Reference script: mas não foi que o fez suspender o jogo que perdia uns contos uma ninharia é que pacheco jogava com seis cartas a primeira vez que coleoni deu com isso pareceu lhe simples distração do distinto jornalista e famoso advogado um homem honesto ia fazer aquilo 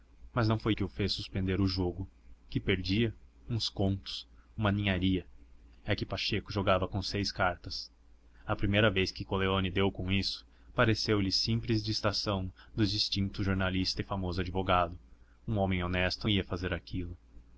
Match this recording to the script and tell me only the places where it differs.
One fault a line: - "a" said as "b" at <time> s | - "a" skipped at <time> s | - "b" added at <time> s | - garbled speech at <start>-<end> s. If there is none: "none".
none